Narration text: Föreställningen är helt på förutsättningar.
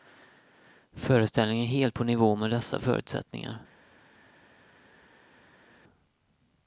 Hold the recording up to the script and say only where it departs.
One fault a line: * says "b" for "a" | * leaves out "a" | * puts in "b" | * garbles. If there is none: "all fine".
* puts in "nivå med dessa"